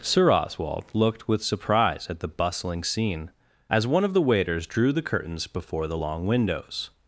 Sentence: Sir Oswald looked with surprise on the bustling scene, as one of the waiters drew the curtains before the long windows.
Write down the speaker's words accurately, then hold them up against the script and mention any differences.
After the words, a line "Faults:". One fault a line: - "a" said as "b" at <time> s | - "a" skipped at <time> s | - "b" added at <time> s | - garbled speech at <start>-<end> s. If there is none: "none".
Sir Oswald looked with surprise at the bustling scene, as one of the waiters drew the curtains before the long windows.
Faults:
- "on" said as "at" at 2.1 s